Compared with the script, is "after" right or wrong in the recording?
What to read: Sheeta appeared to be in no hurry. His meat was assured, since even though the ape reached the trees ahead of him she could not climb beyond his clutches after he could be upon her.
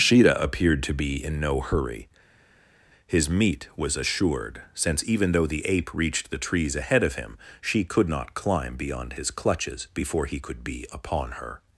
wrong